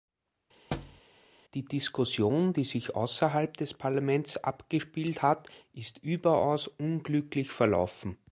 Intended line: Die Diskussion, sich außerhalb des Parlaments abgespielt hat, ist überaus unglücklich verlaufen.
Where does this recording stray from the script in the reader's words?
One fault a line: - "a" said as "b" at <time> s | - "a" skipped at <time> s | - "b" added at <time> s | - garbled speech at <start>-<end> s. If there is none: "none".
- "die" added at 2.5 s